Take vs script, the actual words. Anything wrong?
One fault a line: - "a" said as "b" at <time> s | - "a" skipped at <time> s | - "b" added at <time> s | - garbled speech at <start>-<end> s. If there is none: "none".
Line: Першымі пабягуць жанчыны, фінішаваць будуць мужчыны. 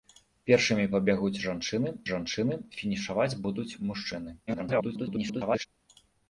- "жанчыны" added at 2.1 s
- garbled speech at 4.5-5.7 s